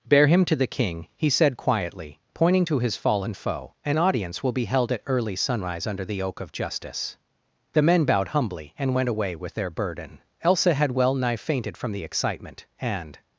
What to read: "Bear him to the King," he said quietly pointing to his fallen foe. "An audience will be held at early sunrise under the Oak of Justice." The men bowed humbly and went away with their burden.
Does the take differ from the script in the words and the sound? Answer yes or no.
yes